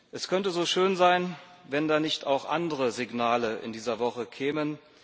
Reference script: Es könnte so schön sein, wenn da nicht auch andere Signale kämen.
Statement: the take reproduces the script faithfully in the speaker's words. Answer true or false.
false